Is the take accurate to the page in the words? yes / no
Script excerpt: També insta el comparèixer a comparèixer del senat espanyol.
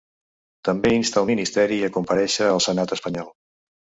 no